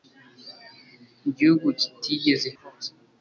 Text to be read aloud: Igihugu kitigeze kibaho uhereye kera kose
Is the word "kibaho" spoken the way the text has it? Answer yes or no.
no